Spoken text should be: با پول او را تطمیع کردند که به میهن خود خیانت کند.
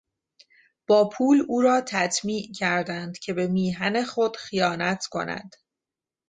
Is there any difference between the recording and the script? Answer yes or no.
no